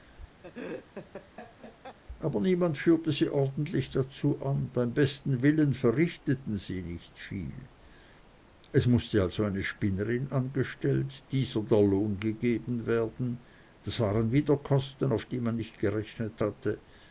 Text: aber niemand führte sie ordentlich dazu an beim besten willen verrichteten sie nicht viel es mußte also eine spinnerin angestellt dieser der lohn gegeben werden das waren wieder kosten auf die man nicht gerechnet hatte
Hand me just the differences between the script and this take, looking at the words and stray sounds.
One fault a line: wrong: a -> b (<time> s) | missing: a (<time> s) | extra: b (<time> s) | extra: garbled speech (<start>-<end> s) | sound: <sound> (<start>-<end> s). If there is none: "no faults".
sound: laugh (0.4-2.0 s)